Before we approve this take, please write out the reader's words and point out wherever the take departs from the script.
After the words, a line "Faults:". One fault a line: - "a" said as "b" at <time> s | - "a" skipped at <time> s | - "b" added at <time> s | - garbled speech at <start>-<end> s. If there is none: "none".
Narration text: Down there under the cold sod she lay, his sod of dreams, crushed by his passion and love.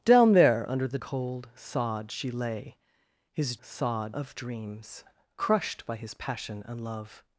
Down there under the cold sod she lay, his sod of dreams, crushed by his passion and love.
Faults:
none